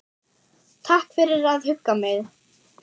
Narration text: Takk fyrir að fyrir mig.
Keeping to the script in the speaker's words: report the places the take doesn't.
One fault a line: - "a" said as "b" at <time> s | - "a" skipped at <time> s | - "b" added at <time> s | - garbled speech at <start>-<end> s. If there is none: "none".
- "fyrir" said as "hugga" at 1.7 s